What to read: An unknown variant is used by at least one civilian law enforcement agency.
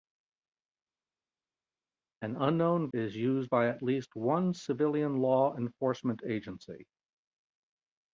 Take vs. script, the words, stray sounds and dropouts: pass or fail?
fail